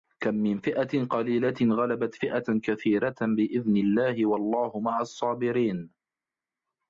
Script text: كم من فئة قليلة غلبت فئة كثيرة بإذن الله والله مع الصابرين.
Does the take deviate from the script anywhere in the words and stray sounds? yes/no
no